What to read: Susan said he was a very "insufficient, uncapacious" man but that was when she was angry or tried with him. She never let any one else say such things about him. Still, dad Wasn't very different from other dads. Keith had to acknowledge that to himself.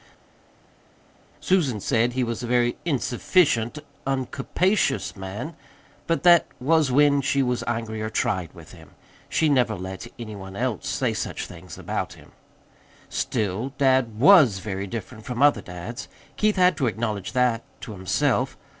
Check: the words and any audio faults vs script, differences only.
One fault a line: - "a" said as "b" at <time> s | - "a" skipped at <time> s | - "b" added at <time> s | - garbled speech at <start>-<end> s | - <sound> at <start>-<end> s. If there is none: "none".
- "Wasn't" said as "WAS" at 14.2 s